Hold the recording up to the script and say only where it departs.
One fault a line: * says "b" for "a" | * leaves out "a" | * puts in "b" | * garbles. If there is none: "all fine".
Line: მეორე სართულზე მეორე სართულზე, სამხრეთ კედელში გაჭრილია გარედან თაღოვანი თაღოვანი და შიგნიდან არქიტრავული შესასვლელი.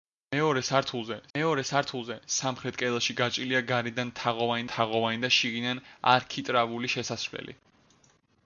all fine